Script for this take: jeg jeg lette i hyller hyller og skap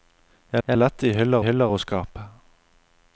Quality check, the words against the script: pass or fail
pass